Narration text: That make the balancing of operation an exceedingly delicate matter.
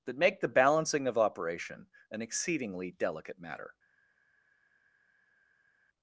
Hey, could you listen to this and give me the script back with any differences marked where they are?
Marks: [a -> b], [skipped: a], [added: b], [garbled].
That make the balancing of operation an exceedingly delicate matter.